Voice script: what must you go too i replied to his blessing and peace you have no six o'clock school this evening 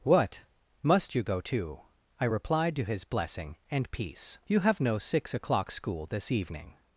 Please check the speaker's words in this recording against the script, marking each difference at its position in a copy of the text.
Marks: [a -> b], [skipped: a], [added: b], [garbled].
what must you go too i replied to his blessing and peace you have no six o'clock school this evening